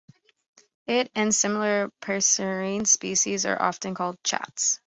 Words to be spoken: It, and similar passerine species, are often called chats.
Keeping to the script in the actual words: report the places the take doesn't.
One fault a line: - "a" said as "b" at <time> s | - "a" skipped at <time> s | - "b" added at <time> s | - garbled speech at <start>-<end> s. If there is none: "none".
none